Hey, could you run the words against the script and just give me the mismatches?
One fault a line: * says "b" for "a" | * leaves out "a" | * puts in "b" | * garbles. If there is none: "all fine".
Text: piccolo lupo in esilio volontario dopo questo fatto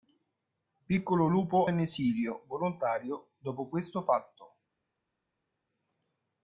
all fine